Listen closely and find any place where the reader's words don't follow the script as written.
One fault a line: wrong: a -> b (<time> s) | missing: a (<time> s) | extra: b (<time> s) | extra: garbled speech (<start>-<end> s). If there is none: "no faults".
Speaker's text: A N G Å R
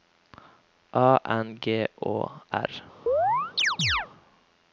no faults